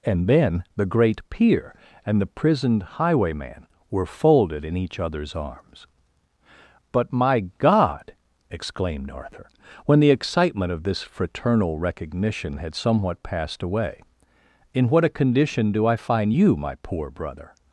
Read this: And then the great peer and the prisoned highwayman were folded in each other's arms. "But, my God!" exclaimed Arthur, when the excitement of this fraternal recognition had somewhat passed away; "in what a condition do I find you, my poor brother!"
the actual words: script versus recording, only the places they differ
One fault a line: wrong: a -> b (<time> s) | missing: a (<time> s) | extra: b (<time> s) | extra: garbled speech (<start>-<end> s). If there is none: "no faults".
no faults